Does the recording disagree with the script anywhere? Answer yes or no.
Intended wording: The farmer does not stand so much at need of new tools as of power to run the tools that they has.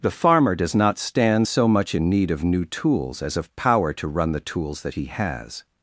yes